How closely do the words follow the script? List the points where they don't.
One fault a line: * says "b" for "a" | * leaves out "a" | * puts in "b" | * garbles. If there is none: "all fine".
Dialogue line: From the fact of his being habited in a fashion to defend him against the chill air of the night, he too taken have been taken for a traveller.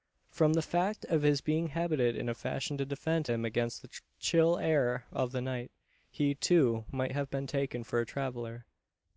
* says "might" for "taken"